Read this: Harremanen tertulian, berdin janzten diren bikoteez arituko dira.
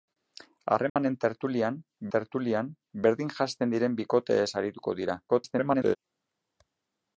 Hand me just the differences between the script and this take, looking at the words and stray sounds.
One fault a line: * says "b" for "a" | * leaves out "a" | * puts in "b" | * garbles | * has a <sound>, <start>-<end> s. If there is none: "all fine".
* has a dropout, 0.9-1.0 s
* puts in "tertulian"
* garbles